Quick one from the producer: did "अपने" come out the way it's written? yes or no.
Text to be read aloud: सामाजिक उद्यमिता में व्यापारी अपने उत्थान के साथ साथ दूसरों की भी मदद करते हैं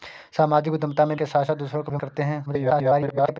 no